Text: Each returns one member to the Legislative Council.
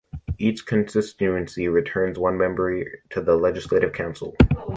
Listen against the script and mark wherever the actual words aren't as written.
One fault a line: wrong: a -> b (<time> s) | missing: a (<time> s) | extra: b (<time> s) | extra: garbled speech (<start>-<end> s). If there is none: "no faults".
extra: constituency (0.7 s)